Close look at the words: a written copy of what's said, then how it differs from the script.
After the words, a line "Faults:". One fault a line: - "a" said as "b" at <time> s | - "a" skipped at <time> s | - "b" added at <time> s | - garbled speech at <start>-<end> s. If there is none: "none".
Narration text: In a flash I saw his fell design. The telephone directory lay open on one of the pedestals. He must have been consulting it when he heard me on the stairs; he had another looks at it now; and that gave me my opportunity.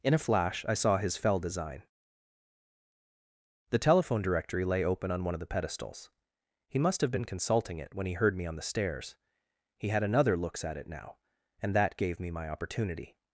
In a flash I saw his fell design. The telephone directory lay open on one of the pedestals. He must have been consulting it when he heard me on the stairs; he had another looks at it now; and that gave me my opportunity.
Faults:
none